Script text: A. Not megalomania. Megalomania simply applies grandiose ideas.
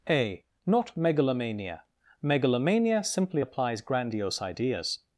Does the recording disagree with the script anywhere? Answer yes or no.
no